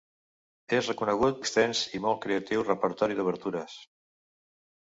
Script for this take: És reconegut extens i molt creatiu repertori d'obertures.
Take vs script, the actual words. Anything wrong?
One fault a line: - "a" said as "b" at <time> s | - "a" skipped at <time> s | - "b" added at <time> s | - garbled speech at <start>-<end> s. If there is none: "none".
none